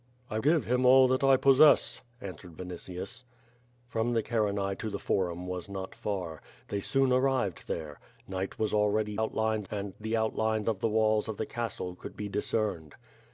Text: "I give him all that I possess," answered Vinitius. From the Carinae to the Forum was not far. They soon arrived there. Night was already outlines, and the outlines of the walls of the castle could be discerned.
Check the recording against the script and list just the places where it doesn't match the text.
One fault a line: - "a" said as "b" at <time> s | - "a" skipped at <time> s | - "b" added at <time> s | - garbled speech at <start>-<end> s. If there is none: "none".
none